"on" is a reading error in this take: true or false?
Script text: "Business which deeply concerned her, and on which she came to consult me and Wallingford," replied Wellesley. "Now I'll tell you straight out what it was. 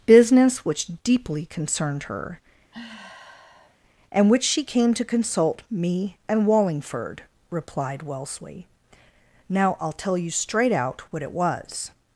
true